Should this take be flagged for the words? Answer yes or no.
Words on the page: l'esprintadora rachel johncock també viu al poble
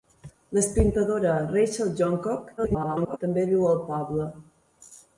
yes